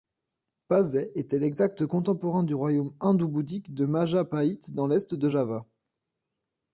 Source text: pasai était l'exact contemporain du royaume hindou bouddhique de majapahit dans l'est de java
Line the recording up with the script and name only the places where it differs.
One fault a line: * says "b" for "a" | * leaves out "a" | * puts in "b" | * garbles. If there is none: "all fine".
all fine